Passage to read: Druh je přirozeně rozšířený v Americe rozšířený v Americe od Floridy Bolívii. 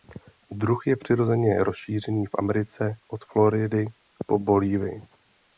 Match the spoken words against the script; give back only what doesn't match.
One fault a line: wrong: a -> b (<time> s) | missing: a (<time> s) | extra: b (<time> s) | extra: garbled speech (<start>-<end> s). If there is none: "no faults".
missing: rozšířený v Americe (3.0 s)
extra: po (4.3 s)